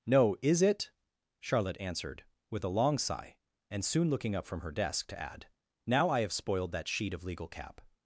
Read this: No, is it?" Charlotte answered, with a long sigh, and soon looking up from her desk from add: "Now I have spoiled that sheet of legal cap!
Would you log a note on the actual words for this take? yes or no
yes